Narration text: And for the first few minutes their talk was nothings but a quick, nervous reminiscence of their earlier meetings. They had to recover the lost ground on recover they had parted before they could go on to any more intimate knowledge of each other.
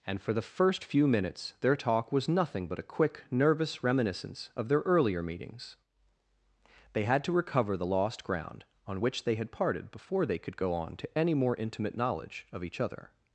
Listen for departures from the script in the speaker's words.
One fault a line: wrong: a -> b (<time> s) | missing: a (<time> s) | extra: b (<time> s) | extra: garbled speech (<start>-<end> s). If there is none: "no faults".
wrong: nothings -> nothing (2.3 s)
wrong: recover -> which (9.0 s)